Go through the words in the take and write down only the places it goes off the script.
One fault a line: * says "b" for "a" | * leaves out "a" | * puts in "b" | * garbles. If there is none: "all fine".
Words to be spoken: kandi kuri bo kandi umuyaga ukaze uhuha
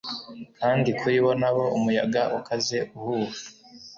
* says "nabo" for "kandi"